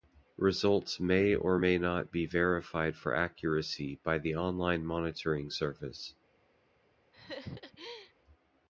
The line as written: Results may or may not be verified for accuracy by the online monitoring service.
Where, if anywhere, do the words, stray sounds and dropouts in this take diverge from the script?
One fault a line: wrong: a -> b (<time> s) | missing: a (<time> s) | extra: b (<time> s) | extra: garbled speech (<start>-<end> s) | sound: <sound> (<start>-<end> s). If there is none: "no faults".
sound: laugh (7.1-8.1 s)